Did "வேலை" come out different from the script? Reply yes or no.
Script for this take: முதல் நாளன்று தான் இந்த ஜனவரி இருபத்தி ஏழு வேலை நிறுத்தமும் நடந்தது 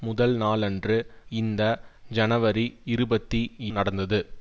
yes